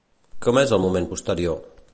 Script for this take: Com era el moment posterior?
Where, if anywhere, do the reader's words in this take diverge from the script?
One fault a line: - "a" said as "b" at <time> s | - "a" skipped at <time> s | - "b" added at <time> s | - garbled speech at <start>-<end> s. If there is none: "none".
- "era" said as "és" at 0.6 s